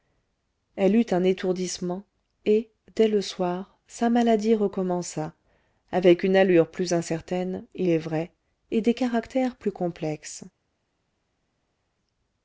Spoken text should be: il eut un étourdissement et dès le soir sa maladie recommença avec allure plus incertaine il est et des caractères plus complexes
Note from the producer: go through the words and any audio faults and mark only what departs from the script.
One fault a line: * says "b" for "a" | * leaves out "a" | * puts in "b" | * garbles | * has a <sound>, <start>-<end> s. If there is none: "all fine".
* says "elle" for "il"
* puts in "une"
* puts in "vrai"